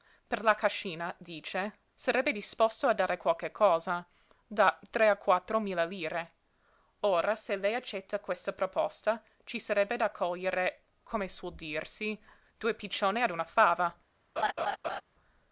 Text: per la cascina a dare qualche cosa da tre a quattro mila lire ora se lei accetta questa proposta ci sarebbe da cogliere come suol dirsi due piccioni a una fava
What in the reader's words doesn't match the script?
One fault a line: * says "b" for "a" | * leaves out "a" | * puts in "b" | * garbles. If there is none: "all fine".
* puts in "dice sarebbe disposto"